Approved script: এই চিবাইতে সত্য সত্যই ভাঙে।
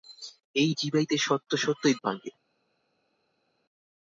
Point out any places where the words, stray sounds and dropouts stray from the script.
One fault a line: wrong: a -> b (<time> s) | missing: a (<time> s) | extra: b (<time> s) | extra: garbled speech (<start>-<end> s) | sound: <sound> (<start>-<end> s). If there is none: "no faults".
no faults